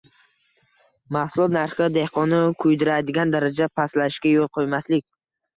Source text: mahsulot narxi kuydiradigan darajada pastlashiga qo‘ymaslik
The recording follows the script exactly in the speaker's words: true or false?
false